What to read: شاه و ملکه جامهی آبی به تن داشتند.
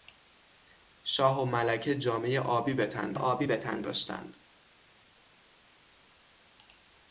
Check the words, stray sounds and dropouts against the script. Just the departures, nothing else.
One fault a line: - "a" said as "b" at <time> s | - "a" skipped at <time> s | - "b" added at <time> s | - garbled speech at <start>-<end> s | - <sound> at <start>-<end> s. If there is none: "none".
- "آبی به تن" added at 3.1 s